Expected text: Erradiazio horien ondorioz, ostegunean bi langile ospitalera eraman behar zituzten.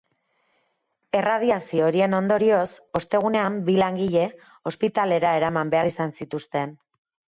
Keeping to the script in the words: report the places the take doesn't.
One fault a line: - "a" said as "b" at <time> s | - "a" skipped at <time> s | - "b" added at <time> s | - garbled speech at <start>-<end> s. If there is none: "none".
- "izan" added at 5.9 s